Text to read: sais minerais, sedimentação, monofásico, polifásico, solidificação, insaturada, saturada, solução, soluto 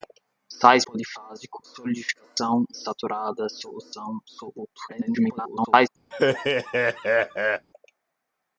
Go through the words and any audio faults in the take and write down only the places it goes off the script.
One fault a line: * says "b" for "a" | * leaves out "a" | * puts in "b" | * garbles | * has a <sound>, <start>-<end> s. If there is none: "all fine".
* leaves out "minerais sedimentação monofásico"
* leaves out "insaturada"
* garbles
* has a laugh, 6.1-7.7 s